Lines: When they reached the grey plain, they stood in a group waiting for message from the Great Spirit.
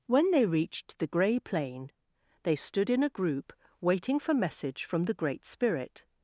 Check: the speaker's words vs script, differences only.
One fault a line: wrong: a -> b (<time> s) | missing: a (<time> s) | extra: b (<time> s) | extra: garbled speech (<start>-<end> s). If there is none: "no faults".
no faults